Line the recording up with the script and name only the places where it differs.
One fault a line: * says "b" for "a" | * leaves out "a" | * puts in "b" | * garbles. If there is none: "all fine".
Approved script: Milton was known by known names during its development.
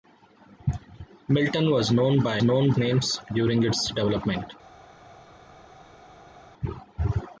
all fine